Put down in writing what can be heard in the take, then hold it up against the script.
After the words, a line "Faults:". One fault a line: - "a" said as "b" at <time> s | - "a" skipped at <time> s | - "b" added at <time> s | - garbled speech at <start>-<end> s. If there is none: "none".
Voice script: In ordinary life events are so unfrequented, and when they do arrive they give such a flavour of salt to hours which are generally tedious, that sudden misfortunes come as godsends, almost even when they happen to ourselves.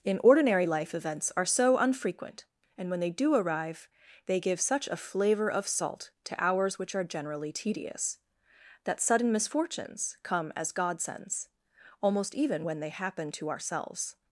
In ordinary life events are so unfrequent, and when they do arrive they give such a flavour of salt to hours which are generally tedious, that sudden misfortunes come as godsends, almost even when they happen to ourselves.
Faults:
- "unfrequented" said as "unfrequent" at 1.8 s